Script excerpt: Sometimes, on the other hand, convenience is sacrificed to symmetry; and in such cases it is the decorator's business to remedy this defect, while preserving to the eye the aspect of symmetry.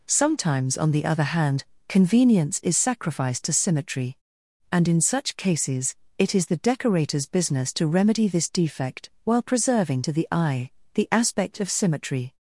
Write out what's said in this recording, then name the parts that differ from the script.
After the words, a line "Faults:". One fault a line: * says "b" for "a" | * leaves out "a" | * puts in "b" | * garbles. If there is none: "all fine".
Sometimes, on the other hand, convenience is sacrificed to symmetry; and in such cases it is the decorator's business to remedy this defect, while preserving to the eye the aspect of symmetry.
Faults:
all fine